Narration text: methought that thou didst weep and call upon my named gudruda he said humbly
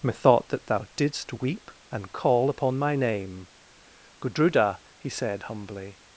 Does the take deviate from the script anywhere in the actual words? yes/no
yes